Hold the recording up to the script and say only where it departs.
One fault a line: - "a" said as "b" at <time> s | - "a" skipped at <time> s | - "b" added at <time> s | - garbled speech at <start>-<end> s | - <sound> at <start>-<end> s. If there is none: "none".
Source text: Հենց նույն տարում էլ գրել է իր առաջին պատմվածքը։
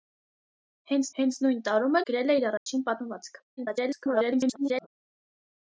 - "հենց" added at 1.2 s
- "էլ" skipped at 2.0 s
- dropout at 2.6-2.7 s
- garbled speech at 3.6-4.9 s